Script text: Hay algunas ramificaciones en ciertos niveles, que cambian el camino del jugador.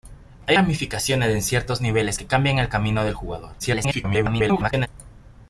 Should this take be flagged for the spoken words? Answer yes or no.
yes